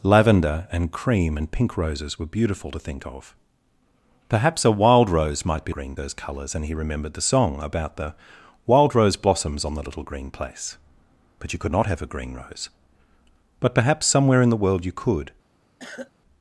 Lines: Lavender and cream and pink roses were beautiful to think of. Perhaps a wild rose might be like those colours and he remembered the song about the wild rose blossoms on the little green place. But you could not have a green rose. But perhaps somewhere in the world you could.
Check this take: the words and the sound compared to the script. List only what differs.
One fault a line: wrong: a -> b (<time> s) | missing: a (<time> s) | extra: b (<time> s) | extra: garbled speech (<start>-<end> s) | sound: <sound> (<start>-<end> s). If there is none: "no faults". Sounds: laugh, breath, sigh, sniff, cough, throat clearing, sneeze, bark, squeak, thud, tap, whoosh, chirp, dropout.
wrong: like -> green (5.7 s)
sound: cough (15.8-16.1 s)